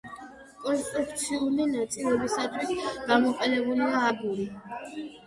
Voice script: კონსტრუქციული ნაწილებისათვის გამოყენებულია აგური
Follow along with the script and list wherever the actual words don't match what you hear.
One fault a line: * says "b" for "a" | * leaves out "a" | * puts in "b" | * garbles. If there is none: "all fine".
all fine